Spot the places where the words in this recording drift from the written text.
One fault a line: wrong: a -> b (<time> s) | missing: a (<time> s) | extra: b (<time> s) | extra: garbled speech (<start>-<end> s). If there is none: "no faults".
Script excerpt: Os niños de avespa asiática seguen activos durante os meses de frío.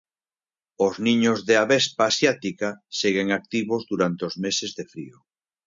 no faults